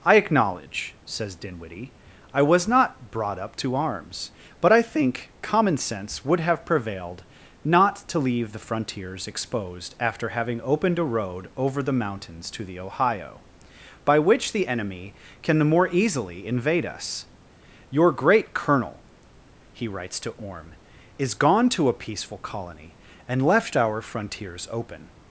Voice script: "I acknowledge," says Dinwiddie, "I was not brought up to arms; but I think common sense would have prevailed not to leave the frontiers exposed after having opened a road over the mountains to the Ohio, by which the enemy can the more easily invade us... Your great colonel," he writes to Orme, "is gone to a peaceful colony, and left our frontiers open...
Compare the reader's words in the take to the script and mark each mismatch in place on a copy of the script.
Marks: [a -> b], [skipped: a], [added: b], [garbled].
"I acknowledge," says Dinwiddie, "I was not brought up to arms; but I think common sense would have prevailed not to leave the frontiers exposed after having opened a road over the mountains to the Ohio, by which the enemy can the more easily invade us... Your great colonel," he writes to Orme, "is gone to a peaceful colony, and left our frontiers open...